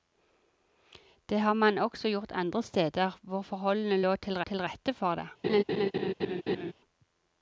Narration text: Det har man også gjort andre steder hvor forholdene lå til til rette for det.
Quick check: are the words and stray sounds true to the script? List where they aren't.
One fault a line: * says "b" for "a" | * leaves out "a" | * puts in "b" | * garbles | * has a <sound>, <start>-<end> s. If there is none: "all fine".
* has a laugh, 5.4-6.7 s